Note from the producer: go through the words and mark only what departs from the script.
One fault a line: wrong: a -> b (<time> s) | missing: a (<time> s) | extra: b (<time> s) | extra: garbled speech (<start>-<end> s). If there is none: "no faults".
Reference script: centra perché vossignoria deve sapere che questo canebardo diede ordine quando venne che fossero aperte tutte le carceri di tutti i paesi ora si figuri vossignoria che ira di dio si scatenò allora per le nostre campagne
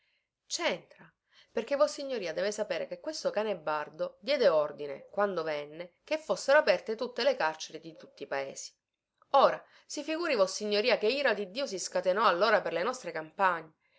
no faults